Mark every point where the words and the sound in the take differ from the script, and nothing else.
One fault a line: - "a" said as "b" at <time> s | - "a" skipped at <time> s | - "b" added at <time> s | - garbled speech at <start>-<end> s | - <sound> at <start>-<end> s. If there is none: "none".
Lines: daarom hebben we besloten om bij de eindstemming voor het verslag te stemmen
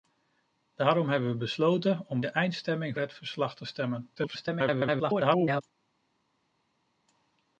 - "bij" skipped at 2.2 s
- "voor" skipped at 3.0 s
- garbled speech at 4.2-5.6 s